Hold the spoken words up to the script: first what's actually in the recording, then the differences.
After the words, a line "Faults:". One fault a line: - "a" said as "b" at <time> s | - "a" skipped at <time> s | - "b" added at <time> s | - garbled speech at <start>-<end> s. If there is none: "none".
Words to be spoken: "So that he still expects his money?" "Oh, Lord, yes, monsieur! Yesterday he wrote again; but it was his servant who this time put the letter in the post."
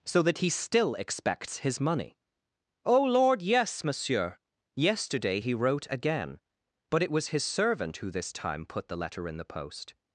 "So that he still expects his money?" "Oh, Lord, yes, monsieur! Yesterday he wrote again; but it was his servant who this time put the letter in the post."
Faults:
none